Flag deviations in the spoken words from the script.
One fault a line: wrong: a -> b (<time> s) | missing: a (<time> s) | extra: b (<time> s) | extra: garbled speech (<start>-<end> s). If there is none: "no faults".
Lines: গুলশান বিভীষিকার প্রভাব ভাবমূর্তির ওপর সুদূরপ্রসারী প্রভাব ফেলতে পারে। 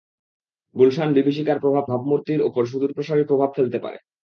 no faults